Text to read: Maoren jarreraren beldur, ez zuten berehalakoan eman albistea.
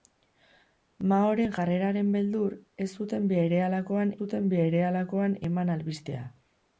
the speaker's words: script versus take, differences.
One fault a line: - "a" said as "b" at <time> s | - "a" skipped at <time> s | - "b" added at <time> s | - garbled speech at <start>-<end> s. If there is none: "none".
- "zuten berehalakoan" added at 4.2 s